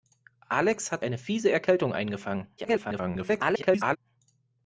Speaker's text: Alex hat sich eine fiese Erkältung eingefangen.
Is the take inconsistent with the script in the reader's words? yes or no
yes